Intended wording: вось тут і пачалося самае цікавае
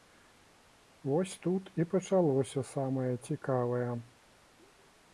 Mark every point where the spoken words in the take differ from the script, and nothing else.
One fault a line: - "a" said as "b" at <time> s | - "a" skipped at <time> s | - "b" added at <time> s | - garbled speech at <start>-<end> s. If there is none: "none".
none